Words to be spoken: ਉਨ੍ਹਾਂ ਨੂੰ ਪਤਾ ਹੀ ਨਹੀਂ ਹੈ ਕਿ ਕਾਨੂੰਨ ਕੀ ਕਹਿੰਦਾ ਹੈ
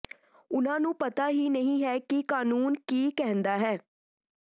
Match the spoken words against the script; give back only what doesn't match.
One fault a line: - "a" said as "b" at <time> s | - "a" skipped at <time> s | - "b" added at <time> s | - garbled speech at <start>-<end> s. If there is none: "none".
none